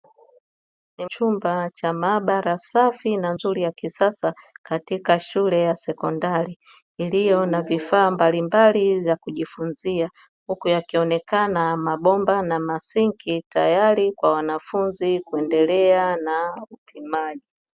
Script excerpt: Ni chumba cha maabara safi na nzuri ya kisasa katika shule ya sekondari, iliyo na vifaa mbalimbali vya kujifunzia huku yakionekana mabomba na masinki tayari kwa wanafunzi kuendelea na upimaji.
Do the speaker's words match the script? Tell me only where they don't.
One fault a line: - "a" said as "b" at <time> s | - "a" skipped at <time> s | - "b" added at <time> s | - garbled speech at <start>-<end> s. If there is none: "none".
none